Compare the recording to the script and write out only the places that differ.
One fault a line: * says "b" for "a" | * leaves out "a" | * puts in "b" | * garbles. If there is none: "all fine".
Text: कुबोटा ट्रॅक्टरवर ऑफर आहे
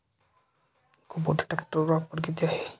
* puts in "किती"